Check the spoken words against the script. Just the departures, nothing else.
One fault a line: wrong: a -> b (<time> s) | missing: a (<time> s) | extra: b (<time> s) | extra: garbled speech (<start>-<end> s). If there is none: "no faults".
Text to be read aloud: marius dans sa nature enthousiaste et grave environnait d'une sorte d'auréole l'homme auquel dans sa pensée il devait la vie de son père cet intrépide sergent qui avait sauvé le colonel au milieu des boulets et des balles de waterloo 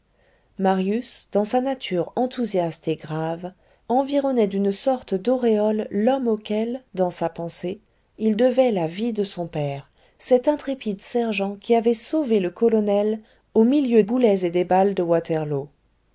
missing: des (14.0 s)